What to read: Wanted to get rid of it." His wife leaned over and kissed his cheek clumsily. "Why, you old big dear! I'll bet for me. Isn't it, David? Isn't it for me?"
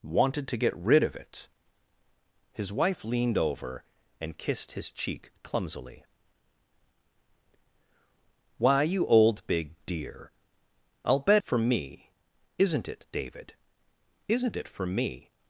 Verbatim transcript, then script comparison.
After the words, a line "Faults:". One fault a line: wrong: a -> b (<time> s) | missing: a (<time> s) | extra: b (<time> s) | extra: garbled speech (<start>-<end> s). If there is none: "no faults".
Wanted to get rid of it." His wife leaned over and kissed his cheek clumsily. "Why, you old big dear! I'll bet for me. Isn't it, David? Isn't it for me?"
Faults:
no faults